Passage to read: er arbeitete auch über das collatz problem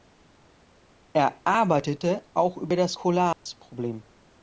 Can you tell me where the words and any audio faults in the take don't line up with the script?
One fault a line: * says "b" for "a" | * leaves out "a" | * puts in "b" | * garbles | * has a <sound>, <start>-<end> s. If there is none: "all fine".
* has a dropout, 3.3-3.5 s